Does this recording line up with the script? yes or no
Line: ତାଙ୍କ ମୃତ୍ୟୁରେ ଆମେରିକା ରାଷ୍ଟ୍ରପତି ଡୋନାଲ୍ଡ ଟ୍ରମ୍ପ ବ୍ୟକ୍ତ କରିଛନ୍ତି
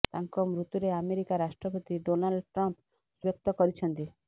yes